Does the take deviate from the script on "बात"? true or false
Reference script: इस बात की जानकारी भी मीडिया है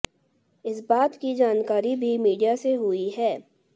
false